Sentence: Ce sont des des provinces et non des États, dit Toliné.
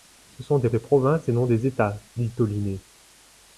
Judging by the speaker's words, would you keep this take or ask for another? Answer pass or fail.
pass